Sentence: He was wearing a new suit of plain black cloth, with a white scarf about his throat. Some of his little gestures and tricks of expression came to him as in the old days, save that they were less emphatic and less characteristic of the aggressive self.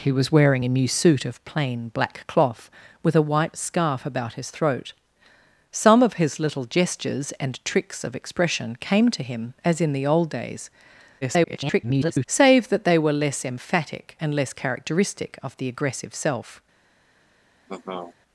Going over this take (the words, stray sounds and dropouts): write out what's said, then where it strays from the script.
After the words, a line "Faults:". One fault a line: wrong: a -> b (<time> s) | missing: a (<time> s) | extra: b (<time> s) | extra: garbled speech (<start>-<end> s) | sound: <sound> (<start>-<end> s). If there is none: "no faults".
He was wearing a new suit of plain black cloth, with a white scarf about his throat. Some of his little gestures and tricks of expression came to him as in the old days, [garbled] save that they were less emphatic and less characteristic of the aggressive self.
Faults:
extra: garbled speech (11.2-12.3 s)
sound: laugh (17.7-18.2 s)